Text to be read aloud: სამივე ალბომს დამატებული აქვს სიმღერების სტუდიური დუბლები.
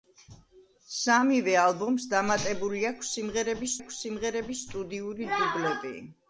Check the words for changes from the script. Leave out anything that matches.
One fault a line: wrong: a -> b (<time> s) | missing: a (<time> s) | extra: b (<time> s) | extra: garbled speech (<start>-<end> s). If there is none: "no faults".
extra: აქვს სიმღერების (3.8 s)